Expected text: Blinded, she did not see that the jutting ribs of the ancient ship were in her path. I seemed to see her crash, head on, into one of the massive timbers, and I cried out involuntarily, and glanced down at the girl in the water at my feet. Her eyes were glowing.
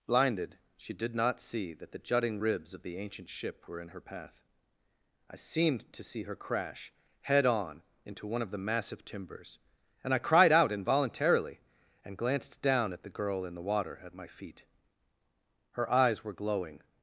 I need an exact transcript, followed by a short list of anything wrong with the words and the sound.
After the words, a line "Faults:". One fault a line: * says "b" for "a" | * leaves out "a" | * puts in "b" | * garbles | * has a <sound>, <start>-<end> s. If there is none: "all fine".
Blinded, she did not see that the jutting ribs of the ancient ship were in her path. I seemed to see her crash, head on, into one of the massive timbers, and I cried out involuntarily, and glanced down at the girl in the water at my feet. Her eyes were glowing.
Faults:
all fine